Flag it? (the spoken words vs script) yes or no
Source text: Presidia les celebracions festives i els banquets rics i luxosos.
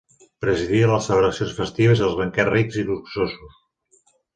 no